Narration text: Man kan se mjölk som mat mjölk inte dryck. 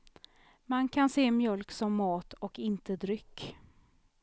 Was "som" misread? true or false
false